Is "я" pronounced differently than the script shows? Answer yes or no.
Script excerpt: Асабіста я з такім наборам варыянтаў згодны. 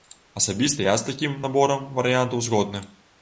no